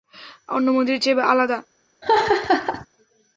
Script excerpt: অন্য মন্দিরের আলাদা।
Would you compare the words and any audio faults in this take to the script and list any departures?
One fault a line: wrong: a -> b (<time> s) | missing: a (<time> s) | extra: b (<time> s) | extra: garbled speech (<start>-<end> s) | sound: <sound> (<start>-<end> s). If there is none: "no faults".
extra: চেয়ে (1.0 s)
sound: laugh (2.0-2.9 s)